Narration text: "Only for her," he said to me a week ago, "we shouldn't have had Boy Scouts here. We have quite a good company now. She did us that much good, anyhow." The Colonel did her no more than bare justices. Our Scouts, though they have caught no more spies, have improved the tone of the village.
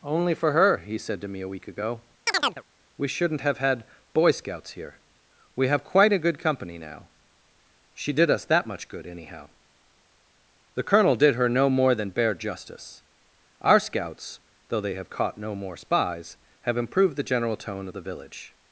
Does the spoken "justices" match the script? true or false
false